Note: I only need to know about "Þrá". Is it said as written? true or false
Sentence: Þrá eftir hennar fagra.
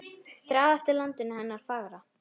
true